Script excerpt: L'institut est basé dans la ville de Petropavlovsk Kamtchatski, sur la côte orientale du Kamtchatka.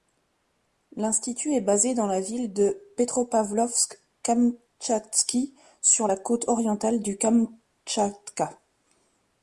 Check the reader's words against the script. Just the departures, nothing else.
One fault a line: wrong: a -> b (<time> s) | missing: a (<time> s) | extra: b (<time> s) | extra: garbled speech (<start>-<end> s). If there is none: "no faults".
no faults